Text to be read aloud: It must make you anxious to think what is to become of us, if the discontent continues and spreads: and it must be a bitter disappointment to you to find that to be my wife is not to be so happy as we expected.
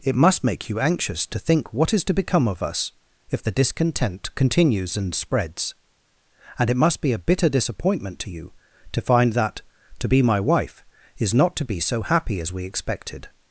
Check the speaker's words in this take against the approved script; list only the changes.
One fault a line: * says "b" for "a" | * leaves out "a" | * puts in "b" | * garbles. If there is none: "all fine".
all fine